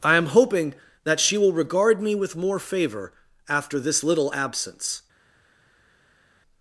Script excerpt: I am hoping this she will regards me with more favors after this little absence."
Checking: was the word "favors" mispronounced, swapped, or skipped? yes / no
yes